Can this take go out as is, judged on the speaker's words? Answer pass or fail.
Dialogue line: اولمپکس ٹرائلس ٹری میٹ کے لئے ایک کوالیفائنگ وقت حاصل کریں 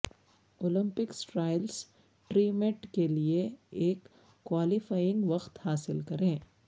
pass